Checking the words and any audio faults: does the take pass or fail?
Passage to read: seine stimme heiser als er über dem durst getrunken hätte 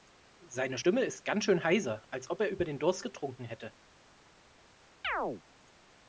fail